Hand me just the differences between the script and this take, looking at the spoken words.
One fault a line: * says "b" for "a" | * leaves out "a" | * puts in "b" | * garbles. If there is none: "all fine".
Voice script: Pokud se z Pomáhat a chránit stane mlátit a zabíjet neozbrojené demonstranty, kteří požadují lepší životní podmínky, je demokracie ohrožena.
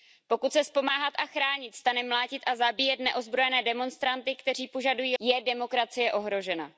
* leaves out "lepší životní podmínky"